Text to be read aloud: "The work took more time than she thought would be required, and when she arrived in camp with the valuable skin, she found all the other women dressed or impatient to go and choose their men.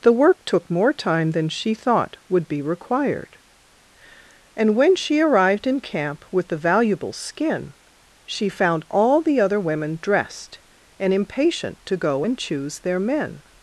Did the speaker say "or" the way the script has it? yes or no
no